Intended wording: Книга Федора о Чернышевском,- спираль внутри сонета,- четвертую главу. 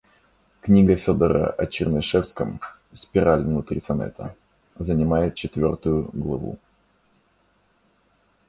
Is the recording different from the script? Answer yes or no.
yes